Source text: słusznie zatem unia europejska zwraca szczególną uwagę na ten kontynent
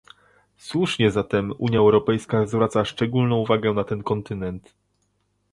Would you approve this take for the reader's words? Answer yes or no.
yes